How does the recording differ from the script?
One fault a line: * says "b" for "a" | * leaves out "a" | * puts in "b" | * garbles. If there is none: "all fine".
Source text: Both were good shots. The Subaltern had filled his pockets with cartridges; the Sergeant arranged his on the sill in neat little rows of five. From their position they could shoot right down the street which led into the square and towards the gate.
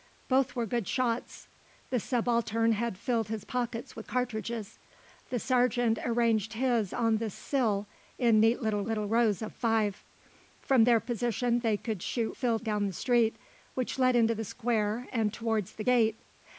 * puts in "little"
* says "filled" for "right"